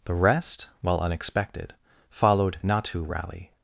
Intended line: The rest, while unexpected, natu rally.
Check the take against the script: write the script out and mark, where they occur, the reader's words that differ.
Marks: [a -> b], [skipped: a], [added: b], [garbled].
The rest, while unexpected, [added: followed] natu rally.